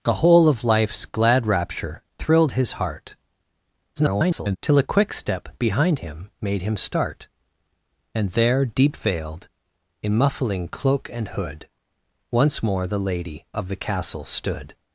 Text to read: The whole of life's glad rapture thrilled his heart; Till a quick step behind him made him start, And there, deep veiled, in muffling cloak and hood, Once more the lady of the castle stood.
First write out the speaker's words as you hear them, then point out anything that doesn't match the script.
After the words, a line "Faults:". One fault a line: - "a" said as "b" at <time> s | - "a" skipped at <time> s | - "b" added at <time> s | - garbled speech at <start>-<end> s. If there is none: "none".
The whole of life's glad rapture thrilled his heart; [garbled] Till a quick step behind him made him start, And there, deep veiled, in muffling cloak and hood, Once more the lady of the castle stood.
Faults:
- garbled speech at 4.0-4.6 s